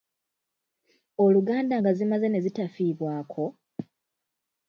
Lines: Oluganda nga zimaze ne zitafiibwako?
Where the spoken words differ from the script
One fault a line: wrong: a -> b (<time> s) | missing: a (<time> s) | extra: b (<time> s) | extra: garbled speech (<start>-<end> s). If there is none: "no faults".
no faults